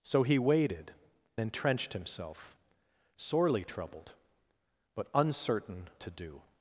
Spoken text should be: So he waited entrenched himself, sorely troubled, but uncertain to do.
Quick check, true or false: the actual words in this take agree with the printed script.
true